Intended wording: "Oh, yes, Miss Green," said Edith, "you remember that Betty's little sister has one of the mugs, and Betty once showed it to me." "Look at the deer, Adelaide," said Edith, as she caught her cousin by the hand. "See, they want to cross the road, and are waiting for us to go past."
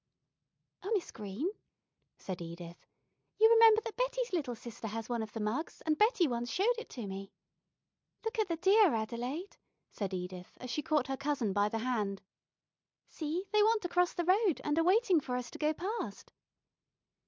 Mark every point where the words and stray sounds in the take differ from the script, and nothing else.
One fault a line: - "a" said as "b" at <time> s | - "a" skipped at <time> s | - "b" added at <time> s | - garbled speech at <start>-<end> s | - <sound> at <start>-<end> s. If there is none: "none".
- "yes" skipped at 0.9 s